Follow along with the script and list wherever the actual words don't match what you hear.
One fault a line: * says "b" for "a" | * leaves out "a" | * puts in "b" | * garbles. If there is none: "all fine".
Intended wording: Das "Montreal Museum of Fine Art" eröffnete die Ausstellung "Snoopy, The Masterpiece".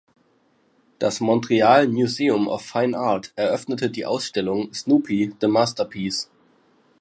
all fine